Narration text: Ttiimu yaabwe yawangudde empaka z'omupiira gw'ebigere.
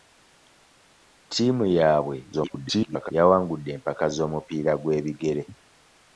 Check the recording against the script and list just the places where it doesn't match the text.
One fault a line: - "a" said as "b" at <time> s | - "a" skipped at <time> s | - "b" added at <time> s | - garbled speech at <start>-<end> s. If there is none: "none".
- garbled speech at 2.3-3.1 s